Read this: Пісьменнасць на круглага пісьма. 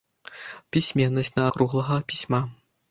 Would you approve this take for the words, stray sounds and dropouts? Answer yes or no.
yes